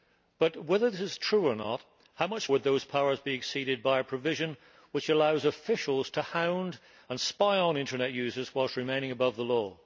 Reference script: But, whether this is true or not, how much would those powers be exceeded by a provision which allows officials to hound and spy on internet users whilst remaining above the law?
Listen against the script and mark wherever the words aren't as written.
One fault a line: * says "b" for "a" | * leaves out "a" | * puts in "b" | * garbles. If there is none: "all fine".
all fine